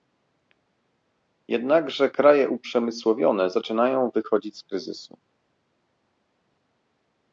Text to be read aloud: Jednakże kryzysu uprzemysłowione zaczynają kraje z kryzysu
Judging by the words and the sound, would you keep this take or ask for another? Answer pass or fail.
fail